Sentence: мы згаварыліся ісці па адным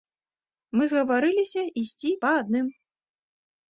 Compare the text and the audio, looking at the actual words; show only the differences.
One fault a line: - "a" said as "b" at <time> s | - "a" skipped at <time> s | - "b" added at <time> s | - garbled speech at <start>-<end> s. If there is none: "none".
none